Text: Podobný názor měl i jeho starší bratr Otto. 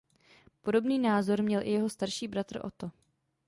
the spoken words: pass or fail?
pass